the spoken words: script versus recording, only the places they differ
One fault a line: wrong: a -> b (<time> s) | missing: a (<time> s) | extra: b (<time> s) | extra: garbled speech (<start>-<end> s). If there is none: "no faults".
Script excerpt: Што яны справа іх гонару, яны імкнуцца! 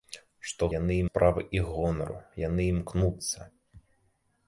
no faults